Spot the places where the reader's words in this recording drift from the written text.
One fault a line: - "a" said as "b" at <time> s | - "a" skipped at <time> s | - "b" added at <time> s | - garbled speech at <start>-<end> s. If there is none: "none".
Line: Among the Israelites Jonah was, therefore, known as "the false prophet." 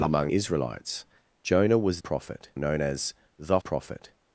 - "the" skipped at 0.3 s
- "therefore" said as "prophet" at 2.0 s
- "false" skipped at 3.6 s